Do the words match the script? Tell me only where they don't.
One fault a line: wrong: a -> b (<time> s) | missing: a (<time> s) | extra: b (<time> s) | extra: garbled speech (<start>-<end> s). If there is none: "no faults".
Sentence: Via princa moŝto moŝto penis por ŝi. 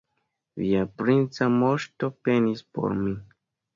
missing: moŝto (2.1 s)
wrong: ŝi -> mi (3.0 s)